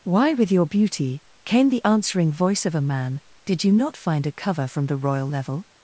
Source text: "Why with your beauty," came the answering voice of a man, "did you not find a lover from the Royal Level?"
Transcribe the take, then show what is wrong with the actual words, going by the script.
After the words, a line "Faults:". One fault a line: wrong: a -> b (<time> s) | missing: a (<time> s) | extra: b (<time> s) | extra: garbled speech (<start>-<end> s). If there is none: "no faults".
"Why with your beauty," came the answering voice of a man, "did you not find a cover from the Royal Level?"
Faults:
wrong: lover -> cover (4.3 s)